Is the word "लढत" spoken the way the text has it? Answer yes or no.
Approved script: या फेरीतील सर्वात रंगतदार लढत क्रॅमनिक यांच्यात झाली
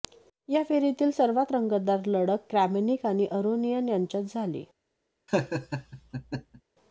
yes